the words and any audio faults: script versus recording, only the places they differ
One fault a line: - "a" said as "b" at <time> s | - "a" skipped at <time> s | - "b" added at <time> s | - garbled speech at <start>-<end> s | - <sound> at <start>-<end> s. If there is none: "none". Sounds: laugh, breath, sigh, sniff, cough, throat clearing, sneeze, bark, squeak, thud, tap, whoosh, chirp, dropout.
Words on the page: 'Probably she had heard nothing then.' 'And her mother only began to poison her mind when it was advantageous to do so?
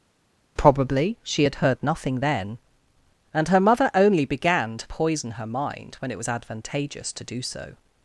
none